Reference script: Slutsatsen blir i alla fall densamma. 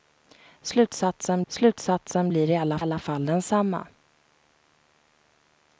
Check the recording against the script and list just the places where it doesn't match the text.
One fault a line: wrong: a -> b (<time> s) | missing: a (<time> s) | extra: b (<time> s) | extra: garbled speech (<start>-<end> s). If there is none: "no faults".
extra: slutsatsen (1.5 s)
extra: alla (2.8 s)